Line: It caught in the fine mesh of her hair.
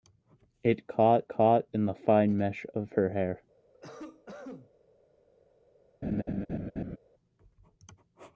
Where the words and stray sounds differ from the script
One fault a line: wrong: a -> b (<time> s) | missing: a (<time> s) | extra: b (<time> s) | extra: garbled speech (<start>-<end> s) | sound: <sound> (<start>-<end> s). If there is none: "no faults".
extra: caught (1.3 s)
sound: cough (3.7-4.7 s)
sound: laugh (6.0-7.0 s)